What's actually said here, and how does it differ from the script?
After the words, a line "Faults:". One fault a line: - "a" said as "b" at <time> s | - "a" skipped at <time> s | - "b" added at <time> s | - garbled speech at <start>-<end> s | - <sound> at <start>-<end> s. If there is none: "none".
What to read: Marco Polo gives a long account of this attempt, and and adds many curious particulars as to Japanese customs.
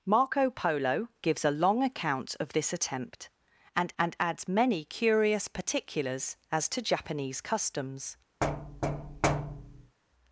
Marco Polo gives a long account of this attempt, and and adds many curious particulars as to Japanese customs.
Faults:
- thud at 8.4-10.0 s